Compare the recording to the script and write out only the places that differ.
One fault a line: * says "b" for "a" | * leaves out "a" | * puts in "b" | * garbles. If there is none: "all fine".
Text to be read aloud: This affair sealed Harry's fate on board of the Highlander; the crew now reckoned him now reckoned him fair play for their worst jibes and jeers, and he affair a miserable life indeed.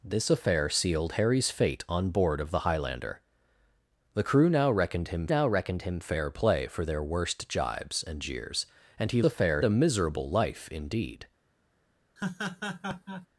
all fine